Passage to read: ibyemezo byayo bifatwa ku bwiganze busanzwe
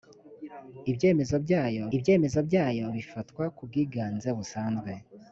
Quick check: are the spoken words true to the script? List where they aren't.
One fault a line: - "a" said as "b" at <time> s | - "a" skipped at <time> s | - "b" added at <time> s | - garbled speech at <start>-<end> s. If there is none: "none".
- "ibyemezo byayo" added at 2.0 s